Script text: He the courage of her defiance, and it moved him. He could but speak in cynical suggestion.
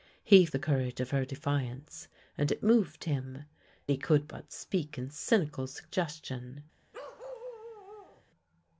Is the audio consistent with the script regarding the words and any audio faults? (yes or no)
no